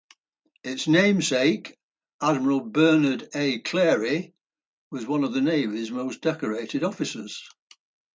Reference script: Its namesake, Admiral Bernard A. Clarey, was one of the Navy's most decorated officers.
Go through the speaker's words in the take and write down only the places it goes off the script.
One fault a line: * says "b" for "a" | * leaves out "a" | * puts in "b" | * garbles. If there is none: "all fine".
all fine